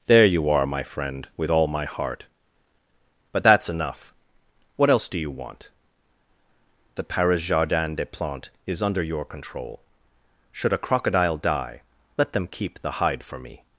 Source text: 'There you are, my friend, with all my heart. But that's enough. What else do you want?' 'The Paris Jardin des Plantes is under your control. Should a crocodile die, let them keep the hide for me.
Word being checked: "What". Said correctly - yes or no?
yes